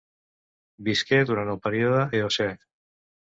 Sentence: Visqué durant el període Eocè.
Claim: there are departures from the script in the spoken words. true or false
false